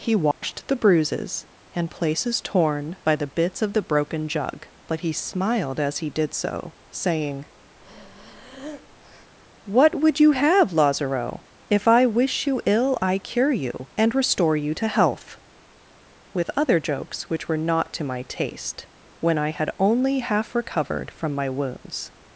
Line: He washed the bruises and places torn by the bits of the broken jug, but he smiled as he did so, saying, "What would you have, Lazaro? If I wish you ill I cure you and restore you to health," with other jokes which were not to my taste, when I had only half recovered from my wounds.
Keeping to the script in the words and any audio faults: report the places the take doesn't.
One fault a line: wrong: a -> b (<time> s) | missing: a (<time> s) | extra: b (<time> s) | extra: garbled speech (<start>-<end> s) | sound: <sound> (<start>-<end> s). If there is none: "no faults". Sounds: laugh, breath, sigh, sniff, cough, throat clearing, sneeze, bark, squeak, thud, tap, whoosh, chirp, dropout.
sound: dropout (0.3-0.4 s)
sound: breath (7.8-9.3 s)